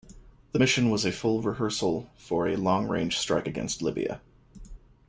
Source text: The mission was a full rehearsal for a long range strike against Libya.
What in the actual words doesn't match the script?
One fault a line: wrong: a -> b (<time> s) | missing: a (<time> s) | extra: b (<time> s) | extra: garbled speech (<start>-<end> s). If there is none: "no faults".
no faults